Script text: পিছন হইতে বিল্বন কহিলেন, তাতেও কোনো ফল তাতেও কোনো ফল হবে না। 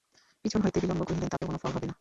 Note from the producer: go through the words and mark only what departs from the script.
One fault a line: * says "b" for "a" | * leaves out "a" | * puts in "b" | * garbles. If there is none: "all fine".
* leaves out "তাতেও কোনো ফল"